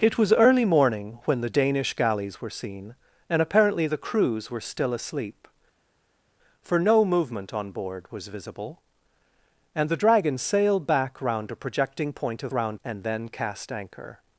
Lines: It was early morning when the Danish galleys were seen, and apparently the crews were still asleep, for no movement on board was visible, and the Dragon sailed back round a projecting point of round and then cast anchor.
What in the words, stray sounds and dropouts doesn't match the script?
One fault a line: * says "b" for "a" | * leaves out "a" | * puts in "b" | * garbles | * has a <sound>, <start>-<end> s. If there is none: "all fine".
all fine